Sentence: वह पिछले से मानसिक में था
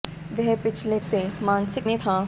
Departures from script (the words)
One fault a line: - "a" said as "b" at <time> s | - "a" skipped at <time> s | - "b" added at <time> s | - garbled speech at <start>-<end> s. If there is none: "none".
none